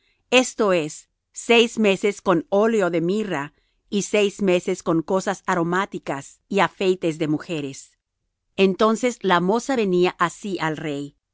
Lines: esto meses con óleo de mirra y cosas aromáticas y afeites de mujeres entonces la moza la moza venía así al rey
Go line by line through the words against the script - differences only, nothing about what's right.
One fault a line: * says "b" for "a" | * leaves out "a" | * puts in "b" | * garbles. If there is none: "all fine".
* puts in "es seis"
* puts in "seis meses con"
* leaves out "la moza"